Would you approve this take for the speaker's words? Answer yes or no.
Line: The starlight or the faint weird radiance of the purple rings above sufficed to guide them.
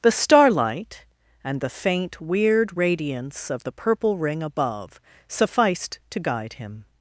no